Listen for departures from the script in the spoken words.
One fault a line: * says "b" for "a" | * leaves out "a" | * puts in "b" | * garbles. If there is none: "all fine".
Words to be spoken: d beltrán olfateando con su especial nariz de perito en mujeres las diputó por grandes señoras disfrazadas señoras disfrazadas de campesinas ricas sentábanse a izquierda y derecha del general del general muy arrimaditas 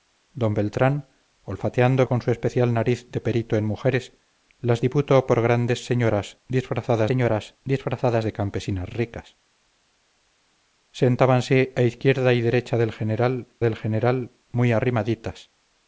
all fine